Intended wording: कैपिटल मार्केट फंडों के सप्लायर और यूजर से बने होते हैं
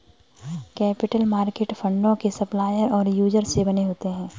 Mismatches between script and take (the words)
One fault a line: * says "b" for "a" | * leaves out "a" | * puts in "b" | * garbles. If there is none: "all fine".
all fine